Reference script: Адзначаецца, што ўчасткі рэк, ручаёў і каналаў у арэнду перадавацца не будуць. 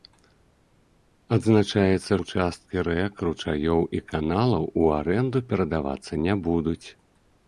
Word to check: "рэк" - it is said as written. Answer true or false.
true